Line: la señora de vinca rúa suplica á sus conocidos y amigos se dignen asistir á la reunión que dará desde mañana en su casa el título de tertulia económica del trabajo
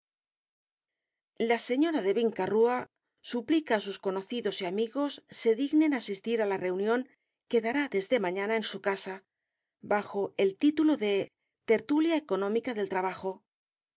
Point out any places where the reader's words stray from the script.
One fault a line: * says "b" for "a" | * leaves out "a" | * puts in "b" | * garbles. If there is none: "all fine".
* puts in "bajo"